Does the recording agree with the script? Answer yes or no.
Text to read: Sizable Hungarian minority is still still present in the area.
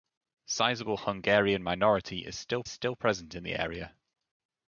yes